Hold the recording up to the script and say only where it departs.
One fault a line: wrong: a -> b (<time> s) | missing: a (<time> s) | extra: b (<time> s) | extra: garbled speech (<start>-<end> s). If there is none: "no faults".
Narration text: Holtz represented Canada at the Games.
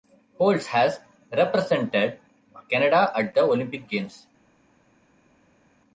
extra: has (0.7 s)
extra: Olympic (3.4 s)